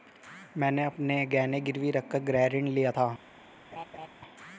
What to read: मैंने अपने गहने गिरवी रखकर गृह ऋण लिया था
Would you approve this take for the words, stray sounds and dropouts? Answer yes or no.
no